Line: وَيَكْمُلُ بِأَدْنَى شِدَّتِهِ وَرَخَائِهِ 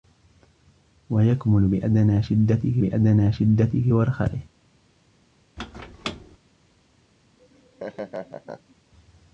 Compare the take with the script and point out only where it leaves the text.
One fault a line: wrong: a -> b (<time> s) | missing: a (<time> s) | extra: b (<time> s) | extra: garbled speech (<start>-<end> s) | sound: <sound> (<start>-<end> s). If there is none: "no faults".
extra: بِأَدْنَى شِدَّتِهِ (2.8 s)
sound: squeak (5.6-6.4 s)
sound: laugh (7.4-8.8 s)